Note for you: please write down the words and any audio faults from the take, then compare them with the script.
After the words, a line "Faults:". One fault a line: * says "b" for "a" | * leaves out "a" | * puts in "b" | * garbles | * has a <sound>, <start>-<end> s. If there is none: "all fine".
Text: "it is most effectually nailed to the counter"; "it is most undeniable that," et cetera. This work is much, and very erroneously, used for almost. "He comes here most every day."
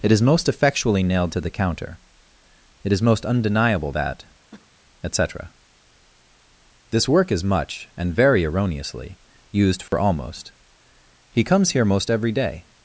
"it is most effectually nailed to the counter"; "it is most undeniable that," et cetera. This work is much, and very erroneously, used for almost. "He comes here most every day."
Faults:
* has a cough, 4.5-4.7 s
* has a dropout, 9.9-9.9 s